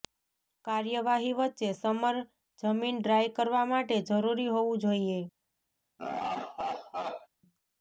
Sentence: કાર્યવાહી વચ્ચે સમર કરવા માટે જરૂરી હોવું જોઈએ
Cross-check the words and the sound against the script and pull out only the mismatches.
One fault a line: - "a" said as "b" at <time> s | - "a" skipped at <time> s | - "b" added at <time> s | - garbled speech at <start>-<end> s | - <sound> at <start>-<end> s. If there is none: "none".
- "જમીન ડ્રાય" added at 2.6 s
- laugh at 6.0-7.3 s